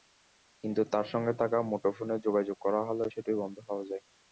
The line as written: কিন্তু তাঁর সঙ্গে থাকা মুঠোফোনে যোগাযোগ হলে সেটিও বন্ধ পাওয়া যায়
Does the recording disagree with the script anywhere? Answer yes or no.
yes